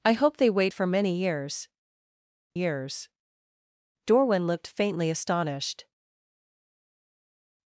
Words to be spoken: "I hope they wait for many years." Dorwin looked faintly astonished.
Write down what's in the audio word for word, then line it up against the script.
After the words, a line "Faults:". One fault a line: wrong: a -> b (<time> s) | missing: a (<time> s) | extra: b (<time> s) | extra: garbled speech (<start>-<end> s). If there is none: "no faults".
"I hope they wait for many years years." Dorwin looked faintly astonished.
Faults:
extra: years (2.6 s)